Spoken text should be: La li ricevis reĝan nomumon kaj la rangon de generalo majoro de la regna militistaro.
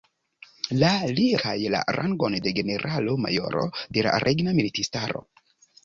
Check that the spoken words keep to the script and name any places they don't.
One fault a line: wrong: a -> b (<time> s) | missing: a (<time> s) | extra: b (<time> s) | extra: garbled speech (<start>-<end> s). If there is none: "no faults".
missing: ricevis reĝan nomumon (1.2 s)